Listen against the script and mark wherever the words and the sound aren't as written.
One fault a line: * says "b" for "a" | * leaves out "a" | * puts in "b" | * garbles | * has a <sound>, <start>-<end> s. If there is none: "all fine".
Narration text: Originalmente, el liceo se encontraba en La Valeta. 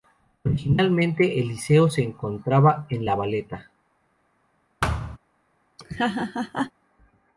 * has a thud, 4.8-5.2 s
* has a laugh, 5.8-6.7 s